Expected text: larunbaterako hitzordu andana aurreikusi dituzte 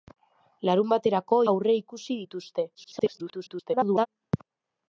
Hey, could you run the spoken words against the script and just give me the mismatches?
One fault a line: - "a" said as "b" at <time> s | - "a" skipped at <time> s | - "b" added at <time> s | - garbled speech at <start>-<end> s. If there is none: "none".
- "hitzordu andana" skipped at 1.4 s
- garbled speech at 2.7-4.1 s